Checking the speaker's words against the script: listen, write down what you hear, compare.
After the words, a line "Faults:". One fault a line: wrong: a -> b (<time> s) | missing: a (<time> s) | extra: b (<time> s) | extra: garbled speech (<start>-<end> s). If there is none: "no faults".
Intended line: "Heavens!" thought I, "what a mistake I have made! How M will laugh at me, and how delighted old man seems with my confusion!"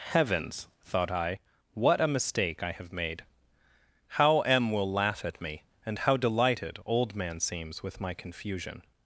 "Heavens!" thought I, "what a mistake I have made! How M will laugh at me, and how delighted old man seems with my confusion!"
Faults:
no faults